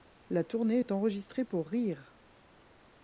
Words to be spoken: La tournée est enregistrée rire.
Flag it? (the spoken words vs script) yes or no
yes